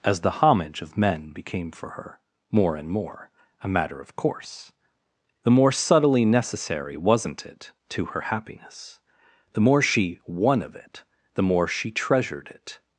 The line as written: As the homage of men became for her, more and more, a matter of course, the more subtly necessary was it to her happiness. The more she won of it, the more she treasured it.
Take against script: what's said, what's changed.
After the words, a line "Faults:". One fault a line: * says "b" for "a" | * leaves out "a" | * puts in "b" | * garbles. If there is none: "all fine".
As the homage of men became for her, more and more, a matter of course, the more subtly necessary wasn't it to her happiness. The more she won of it, the more she treasured it.
Faults:
* says "wasn't" for "was"